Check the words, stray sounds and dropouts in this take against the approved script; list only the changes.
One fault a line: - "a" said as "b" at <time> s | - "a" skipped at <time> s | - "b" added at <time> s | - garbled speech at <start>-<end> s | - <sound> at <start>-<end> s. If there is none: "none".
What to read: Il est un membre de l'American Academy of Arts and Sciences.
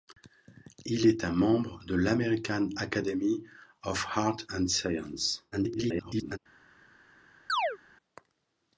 - garbled speech at 5.5-6.4 s
- chirp at 7.5-7.8 s